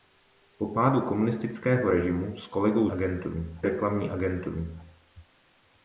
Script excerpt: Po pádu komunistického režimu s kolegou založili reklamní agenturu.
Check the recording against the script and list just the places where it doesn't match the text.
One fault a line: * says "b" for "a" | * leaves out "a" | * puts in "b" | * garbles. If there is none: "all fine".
* says "agenturu" for "založili"